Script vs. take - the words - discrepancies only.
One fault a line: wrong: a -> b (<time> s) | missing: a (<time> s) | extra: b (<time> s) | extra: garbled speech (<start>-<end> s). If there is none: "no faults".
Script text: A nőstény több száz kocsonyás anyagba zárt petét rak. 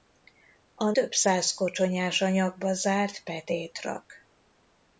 missing: nőstény (0.9 s)